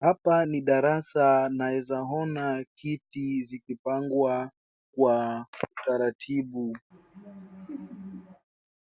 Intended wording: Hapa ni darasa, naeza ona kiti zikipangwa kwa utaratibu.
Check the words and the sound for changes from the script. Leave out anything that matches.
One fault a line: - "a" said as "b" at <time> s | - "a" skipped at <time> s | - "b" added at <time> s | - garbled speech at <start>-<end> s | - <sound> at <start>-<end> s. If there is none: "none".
- laugh at 6.9-8.5 s